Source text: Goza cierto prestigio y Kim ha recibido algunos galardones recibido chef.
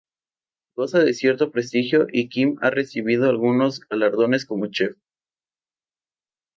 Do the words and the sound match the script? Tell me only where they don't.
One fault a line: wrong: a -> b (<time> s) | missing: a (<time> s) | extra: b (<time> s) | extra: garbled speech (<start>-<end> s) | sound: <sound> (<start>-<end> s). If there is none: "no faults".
extra: de (1.0 s)
wrong: recibido -> como (4.5 s)